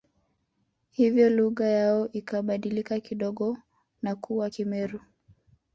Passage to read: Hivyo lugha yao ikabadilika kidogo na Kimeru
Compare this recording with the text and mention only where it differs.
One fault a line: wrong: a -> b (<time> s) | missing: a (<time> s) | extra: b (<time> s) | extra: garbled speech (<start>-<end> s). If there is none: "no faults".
extra: kuwa (4.2 s)